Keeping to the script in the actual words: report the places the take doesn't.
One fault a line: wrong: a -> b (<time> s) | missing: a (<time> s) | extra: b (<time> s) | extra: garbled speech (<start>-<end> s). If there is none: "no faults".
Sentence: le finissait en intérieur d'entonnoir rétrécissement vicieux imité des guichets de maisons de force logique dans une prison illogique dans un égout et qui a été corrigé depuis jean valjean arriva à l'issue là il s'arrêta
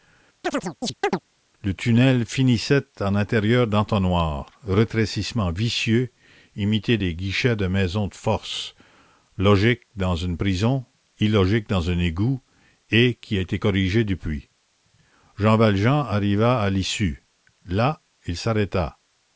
extra: tunnel (1.7 s)